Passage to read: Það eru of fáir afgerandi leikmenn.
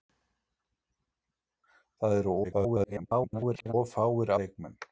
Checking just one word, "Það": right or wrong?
right